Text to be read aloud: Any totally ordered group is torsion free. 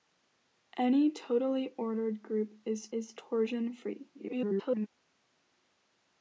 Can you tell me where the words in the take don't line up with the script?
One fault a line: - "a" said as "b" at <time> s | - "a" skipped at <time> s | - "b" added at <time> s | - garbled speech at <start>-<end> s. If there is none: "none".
- "is" added at 2.9 s
- garbled speech at 4.1-4.9 s